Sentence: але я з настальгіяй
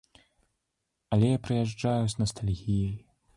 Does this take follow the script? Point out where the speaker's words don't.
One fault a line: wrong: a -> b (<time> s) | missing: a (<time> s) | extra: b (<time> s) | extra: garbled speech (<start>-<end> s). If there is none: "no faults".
extra: прыязджаю (1.4 s)